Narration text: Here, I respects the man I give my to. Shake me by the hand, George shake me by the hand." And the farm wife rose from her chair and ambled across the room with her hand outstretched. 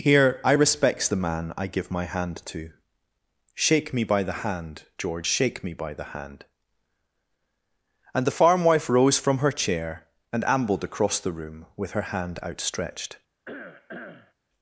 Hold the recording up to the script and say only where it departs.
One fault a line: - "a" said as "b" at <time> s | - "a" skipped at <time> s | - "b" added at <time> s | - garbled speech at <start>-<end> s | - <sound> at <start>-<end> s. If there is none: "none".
- "hand" added at 2.1 s
- cough at 13.5-14.3 s